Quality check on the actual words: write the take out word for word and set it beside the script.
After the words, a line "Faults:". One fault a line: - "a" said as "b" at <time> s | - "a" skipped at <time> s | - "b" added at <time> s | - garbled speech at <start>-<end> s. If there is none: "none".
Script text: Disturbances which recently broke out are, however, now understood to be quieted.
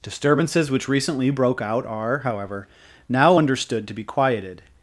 Disturbances which recently broke out are, however, now understood to be quieted.
Faults:
none